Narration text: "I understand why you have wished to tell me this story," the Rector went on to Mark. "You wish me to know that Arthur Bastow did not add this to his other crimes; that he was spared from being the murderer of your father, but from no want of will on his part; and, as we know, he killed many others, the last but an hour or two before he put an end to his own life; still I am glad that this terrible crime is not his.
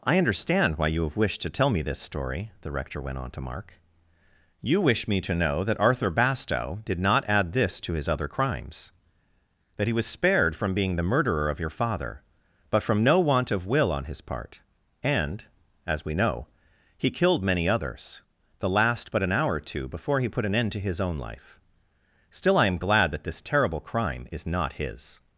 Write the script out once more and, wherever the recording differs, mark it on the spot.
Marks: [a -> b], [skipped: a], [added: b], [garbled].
"I understand why you have wished to tell me this story," the Rector went on to Mark. "You wish me to know that Arthur Bastow did not add this to his other crimes; that he was spared from being the murderer of your father, but from no want of will on his part; and, as we know, he killed many others, the last but an hour or two before he put an end to his own life; still I am glad that this terrible crime is not his.